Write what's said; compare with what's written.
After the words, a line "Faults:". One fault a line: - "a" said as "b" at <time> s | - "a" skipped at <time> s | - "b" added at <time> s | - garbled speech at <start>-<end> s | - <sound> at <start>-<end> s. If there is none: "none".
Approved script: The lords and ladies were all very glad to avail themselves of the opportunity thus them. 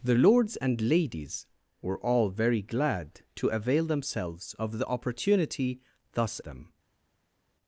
The lords and ladies were all very glad to avail themselves of the opportunity thus them.
Faults:
none